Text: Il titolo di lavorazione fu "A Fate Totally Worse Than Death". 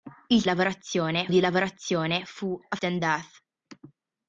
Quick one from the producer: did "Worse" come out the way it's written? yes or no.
no